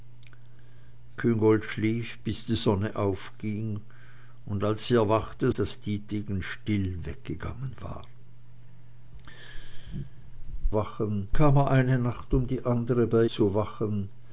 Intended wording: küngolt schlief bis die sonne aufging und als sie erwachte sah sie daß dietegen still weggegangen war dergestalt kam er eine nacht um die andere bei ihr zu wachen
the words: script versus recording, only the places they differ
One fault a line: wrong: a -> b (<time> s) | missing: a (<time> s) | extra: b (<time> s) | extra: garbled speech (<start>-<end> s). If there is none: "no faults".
missing: sah sie (5.5 s)
wrong: dergestalt -> wachen (10.7 s)
missing: ihr (13.2 s)